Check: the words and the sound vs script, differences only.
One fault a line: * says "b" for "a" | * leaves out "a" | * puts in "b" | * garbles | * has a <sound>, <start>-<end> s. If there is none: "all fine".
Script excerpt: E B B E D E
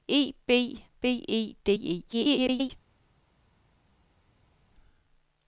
* garbles